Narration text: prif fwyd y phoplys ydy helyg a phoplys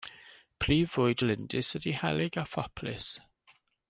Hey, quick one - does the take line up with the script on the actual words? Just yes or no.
no